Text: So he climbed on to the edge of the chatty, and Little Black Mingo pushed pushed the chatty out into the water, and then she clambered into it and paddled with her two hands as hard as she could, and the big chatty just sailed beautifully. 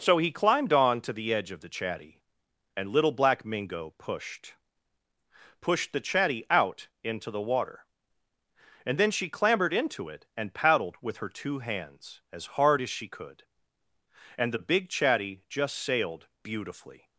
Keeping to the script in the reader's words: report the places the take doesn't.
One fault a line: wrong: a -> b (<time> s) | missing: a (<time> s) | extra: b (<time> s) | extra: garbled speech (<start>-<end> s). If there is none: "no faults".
no faults